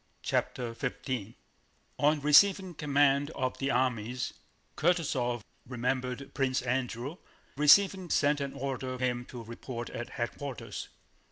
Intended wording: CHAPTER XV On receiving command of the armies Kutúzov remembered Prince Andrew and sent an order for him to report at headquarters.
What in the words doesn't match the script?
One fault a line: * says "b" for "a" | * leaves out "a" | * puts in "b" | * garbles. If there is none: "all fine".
* says "receiving" for "and"
* leaves out "for"